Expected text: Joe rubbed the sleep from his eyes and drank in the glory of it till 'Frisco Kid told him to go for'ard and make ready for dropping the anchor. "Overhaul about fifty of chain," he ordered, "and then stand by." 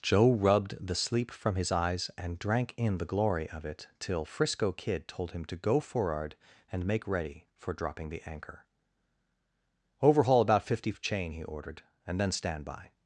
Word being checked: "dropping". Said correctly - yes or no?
yes